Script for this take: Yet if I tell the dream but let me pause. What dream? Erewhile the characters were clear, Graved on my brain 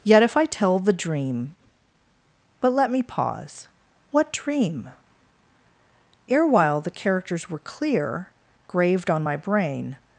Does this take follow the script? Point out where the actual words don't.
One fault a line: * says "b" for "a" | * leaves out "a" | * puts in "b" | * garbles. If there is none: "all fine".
all fine